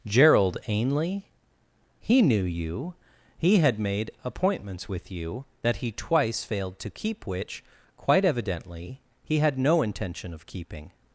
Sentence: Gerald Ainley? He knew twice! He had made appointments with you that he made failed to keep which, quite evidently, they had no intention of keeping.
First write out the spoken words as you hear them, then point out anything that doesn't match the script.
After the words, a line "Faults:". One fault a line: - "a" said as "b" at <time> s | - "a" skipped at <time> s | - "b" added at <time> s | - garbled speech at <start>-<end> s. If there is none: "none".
Gerald Ainley? He knew you! He had made appointments with you that he twice failed to keep which, quite evidently, he had no intention of keeping.
Faults:
- "twice" said as "you" at 2.4 s
- "made" said as "twice" at 5.9 s
- "they" said as "he" at 9.2 s